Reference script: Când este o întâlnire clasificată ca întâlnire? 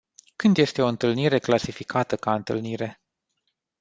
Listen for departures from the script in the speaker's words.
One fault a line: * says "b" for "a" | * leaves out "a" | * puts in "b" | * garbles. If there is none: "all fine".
all fine